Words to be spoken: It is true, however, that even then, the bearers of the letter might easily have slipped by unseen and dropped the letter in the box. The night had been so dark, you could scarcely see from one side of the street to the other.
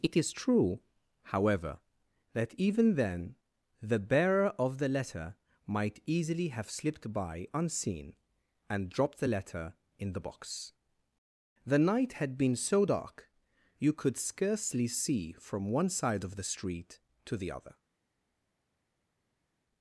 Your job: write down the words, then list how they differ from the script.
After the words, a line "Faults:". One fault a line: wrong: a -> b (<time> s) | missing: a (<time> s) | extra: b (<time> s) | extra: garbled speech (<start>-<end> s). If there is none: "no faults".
It is true, however, that even then, the bearer of the letter might easily have slipped by unseen and dropped the letter in the box. The night had been so dark, you could scarcely see from one side of the street to the other.
Faults:
wrong: bearers -> bearer (4.0 s)